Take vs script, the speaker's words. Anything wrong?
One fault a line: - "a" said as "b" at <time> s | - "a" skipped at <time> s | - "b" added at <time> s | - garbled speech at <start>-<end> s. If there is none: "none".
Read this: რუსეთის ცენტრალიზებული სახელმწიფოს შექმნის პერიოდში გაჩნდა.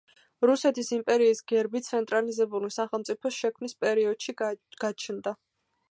- "იმპერიის გერბი" added at 0.9 s